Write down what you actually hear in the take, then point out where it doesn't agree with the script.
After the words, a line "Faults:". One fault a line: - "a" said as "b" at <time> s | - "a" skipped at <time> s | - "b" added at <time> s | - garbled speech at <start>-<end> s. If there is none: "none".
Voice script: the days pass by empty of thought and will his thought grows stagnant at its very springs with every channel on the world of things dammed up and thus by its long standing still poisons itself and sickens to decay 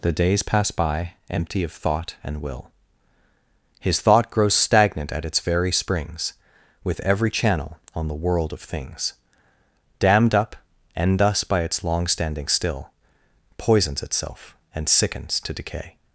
the days pass by empty of thought and will his thought grows stagnant at its very springs with every channel on the world of things dammed up and thus by its long standing still poisons itself and sickens to decay
Faults:
none